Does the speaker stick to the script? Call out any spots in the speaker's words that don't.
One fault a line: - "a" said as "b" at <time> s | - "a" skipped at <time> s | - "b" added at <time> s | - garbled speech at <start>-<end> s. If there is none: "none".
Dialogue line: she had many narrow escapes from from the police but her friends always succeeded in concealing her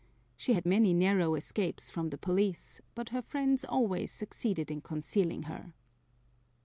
- "from" skipped at 2.1 s